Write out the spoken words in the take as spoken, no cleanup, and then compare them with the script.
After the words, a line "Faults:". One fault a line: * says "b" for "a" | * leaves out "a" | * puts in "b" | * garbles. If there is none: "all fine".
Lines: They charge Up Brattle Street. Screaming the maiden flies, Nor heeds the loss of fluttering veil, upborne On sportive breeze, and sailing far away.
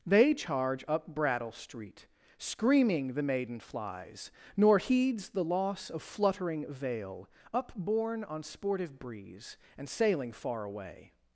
They charge Up Brattle Street. Screaming the maiden flies, Nor heeds the loss of fluttering veil, upborne On sportive breeze, and sailing far away.
Faults:
all fine